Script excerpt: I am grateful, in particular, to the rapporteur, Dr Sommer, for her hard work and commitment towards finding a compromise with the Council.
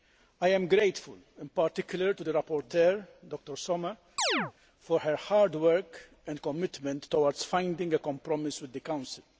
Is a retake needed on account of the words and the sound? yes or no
yes